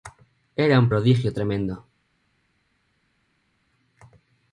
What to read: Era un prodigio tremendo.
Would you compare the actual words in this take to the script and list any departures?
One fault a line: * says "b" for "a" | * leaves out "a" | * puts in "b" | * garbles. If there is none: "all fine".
all fine